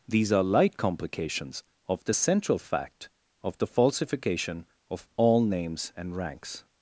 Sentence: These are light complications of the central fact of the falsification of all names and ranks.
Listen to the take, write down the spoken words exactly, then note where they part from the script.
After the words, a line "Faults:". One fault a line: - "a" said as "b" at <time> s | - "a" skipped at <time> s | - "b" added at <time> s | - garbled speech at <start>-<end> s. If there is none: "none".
These are light complications of the central fact of the falsification of all names and ranks.
Faults:
none